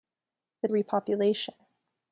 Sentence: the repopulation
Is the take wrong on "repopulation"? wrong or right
right